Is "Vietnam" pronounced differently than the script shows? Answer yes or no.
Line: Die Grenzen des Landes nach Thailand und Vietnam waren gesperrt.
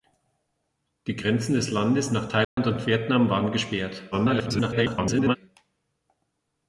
no